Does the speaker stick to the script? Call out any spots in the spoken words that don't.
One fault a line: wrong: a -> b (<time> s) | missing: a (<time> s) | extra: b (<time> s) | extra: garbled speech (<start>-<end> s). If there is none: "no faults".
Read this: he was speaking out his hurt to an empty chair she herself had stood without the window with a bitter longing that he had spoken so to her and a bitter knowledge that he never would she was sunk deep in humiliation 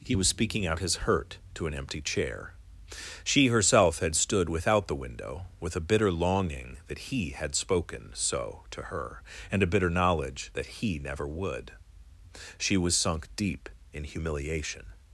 no faults